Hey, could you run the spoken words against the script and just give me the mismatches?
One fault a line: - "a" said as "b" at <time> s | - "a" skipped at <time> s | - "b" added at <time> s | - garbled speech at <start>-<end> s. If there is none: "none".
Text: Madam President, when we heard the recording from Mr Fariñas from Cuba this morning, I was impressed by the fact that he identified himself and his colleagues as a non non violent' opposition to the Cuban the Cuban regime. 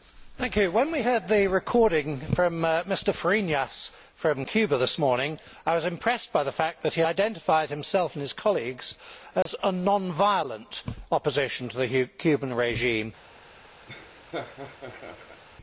- "non" skipped at 10.1 s
- "the Cuban" skipped at 12.5 s